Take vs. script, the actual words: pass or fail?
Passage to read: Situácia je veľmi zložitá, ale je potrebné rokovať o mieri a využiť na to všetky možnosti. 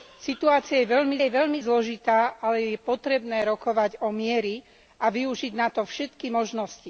fail